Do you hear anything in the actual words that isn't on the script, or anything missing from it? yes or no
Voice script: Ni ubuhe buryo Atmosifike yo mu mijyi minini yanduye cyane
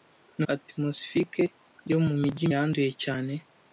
yes